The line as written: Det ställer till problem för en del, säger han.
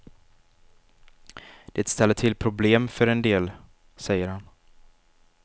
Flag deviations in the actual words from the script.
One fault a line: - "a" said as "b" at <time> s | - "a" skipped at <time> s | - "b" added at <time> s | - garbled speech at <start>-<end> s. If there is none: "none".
none